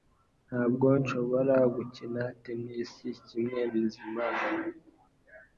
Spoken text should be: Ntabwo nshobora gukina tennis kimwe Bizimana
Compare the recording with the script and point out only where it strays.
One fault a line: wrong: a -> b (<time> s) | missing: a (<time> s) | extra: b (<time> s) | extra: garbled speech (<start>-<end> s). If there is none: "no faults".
no faults